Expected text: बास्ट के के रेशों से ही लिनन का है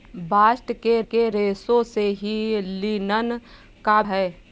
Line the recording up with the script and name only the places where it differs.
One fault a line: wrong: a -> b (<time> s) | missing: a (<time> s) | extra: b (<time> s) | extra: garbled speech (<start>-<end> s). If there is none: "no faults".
no faults